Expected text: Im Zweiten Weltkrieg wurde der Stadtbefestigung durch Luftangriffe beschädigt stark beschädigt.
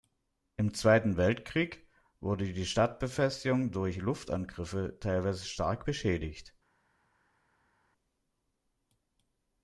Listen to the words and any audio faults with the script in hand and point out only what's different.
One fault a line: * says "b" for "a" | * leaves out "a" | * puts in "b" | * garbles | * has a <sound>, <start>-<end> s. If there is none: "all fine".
* says "die" for "der"
* says "teilweise" for "beschädigt"